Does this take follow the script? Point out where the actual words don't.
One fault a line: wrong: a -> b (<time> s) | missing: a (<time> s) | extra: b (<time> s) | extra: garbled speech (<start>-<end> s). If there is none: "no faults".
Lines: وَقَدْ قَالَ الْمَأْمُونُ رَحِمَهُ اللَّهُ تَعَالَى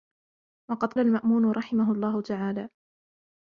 missing: قَالَ (0.9 s)